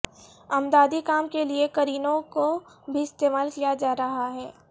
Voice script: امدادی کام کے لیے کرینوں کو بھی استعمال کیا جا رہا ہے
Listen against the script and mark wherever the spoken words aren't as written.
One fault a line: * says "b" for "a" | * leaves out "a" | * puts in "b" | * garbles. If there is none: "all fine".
all fine